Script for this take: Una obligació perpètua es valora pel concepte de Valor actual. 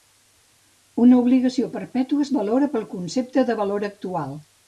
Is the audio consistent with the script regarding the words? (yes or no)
yes